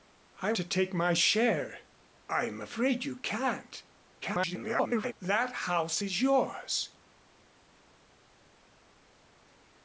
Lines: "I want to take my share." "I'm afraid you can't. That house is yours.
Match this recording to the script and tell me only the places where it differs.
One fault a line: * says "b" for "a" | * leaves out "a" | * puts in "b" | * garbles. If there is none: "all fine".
* leaves out "want"
* garbles